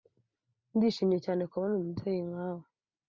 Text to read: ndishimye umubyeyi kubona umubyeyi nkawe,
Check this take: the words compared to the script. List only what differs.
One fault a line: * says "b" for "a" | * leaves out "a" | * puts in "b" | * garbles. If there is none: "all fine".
* says "cyane" for "umubyeyi"